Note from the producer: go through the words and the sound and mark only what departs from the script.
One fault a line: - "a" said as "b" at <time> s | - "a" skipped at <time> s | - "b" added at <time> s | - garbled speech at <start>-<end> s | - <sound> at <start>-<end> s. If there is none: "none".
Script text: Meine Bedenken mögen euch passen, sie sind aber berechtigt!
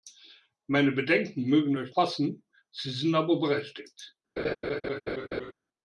- laugh at 4.4-5.5 s